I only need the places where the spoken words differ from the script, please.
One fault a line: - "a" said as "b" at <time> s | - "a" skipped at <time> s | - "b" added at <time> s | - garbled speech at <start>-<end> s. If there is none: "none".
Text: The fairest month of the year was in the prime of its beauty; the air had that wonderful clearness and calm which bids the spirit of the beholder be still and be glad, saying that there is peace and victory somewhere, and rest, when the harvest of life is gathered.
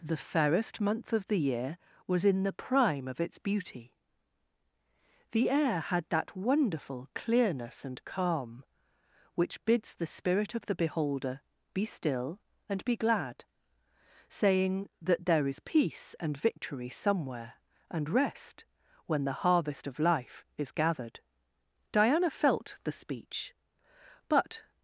- "Diana felt the speech but" added at 21.9 s